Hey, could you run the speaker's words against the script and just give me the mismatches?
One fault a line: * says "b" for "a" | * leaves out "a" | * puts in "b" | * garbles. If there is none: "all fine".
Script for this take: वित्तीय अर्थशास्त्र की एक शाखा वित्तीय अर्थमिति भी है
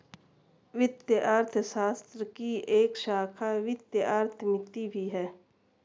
all fine